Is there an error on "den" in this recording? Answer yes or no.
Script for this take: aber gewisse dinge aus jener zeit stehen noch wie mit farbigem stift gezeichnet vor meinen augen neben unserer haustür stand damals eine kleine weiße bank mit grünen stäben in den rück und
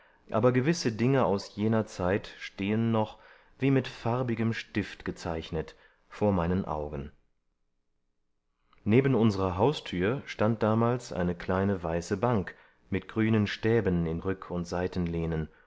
yes